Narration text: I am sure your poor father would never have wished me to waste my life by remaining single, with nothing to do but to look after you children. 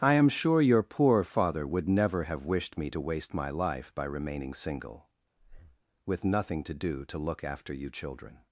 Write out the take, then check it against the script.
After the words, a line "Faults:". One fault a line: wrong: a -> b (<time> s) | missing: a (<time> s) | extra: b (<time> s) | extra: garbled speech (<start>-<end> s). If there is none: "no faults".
I am sure your poor father would never have wished me to waste my life by remaining single, with nothing to do to look after you children.
Faults:
missing: but (7.0 s)